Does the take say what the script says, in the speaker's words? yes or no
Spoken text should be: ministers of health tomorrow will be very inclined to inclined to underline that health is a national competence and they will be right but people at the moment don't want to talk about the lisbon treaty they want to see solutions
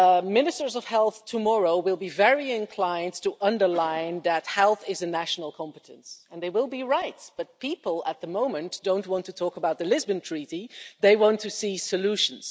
no